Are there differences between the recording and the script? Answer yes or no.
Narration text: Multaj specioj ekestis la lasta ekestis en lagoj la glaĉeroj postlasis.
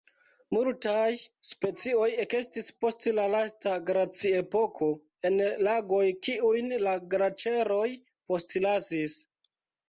yes